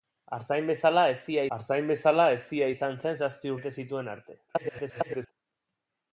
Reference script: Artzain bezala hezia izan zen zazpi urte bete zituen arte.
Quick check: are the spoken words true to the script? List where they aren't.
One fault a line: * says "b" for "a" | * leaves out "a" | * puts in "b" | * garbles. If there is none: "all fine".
* puts in "artzain bezala hezia"
* leaves out "urte"
* garbles